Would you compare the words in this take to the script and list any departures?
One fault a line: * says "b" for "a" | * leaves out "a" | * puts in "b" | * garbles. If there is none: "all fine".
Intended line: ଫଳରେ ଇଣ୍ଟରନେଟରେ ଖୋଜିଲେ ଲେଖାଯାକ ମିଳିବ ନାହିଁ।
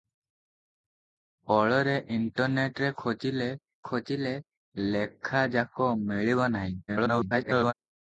* puts in "ଖୋଜିଲେ"
* garbles